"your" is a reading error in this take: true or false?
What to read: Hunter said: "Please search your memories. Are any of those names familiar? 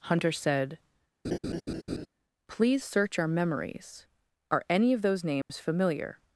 true